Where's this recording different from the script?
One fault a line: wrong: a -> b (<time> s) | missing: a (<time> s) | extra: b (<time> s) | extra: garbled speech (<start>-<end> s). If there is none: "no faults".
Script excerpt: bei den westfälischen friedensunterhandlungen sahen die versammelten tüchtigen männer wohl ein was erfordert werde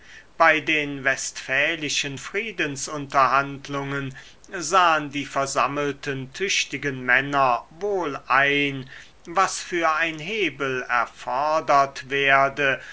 extra: für ein hebel (9.6 s)